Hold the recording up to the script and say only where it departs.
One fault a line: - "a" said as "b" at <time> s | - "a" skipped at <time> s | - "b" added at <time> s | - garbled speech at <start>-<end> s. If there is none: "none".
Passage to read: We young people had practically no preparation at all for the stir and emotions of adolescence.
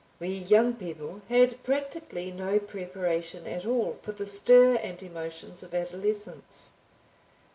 none